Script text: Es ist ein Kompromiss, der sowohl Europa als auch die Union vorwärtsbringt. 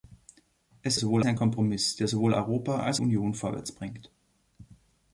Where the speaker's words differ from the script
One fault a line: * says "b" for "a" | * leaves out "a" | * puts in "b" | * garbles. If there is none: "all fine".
* says "sowohl" for "ist"
* leaves out "auch die"